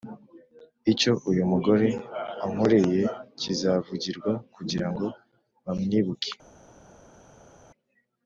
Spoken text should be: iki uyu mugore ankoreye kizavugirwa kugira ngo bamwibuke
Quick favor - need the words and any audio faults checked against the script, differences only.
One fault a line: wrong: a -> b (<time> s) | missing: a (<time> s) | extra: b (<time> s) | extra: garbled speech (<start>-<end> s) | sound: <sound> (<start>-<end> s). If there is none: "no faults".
wrong: iki -> icyo (0.9 s)